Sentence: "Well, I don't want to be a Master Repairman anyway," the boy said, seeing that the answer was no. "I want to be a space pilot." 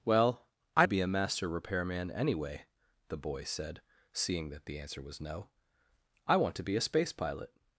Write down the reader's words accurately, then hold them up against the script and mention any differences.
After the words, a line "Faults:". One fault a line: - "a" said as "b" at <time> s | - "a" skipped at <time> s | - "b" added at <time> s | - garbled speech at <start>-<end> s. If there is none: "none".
"Well, I to be a Master Repairman anyway," the boy said, seeing that the answer was no. "I want to be a space pilot."
Faults:
- "don't want" skipped at 0.8 s